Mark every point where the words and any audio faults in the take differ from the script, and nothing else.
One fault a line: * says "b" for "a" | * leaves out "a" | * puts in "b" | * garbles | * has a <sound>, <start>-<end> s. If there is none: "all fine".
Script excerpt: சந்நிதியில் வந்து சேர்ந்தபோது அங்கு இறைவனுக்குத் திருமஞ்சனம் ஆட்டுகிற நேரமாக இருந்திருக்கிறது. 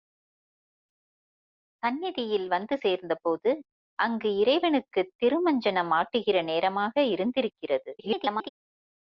* garbles